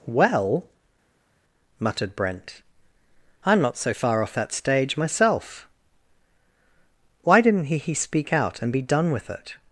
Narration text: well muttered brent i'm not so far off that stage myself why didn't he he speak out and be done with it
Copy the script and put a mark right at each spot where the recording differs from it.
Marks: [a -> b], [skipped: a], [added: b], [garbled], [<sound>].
well muttered brent i'm not so far off that stage myself why didn't he he speak out and be done with it